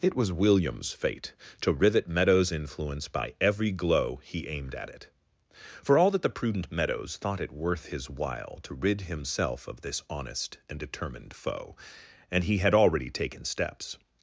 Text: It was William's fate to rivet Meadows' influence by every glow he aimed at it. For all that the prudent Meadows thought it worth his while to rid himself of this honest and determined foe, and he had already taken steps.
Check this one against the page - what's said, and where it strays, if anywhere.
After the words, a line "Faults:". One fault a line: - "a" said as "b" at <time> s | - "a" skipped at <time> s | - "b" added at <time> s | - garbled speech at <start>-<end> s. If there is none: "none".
It was William's fate to rivet Meadows' influence by every glow he aimed at it. For all that the prudent Meadows thought it worth his while to rid himself of this honest and determined foe, and he had already taken steps.
Faults:
none